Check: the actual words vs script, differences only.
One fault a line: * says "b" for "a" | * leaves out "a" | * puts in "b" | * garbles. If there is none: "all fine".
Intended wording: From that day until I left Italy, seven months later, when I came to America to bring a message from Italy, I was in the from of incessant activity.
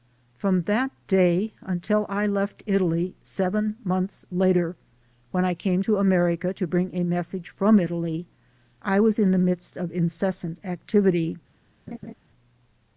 * says "midst" for "from"